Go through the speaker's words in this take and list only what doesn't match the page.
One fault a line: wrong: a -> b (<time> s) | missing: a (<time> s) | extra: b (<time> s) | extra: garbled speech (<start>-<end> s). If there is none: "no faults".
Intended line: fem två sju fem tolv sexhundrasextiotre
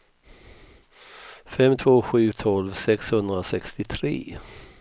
missing: fem (2.3 s)